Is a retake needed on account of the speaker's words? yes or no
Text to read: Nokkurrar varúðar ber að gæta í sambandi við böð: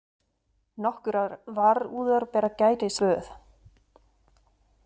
yes